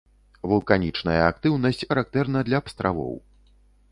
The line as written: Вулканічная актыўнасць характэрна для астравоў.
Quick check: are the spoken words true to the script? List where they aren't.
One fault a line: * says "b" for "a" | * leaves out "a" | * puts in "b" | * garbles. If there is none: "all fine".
all fine